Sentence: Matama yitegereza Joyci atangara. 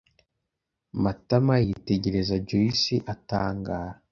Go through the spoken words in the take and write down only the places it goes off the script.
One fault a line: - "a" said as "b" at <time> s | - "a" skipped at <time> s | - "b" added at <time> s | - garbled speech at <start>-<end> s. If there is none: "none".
none